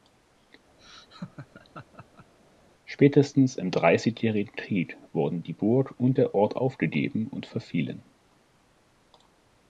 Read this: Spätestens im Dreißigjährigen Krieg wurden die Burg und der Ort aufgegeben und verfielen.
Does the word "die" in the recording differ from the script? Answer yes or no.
no